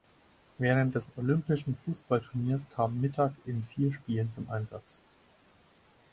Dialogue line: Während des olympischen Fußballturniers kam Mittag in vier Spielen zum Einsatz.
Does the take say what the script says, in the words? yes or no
yes